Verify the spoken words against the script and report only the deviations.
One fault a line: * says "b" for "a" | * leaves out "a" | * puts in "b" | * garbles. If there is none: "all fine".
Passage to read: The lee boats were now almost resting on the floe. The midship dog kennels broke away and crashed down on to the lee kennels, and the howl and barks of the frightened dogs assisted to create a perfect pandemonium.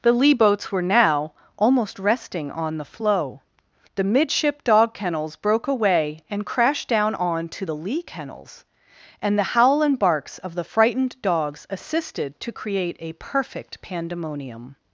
all fine